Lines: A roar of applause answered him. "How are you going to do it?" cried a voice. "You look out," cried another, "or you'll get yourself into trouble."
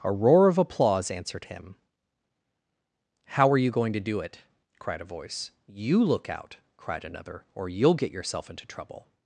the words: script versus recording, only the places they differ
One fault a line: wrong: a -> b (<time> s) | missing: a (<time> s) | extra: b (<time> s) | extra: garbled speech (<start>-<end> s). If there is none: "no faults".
no faults